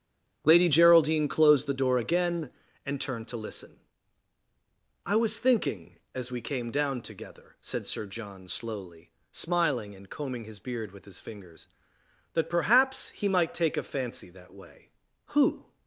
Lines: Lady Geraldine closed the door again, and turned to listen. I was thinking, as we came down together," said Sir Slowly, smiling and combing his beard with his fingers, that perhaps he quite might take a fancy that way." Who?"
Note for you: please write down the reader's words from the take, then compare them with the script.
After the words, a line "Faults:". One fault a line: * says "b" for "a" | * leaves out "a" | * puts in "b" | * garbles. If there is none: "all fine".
Lady Geraldine closed the door again, and turned to listen. I was thinking, as we came down together," said Sir John slowly, smiling and combing his beard with his fingers, that perhaps he might take a fancy that way." Who?"
Faults:
* puts in "John"
* leaves out "quite"